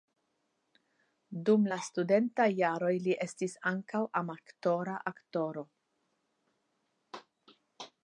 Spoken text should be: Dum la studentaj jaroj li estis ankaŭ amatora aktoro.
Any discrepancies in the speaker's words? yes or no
no